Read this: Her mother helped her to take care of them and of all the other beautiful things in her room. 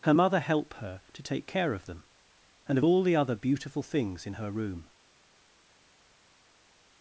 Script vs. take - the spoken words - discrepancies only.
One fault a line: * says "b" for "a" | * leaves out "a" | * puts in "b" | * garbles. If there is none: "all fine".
* says "help" for "helped"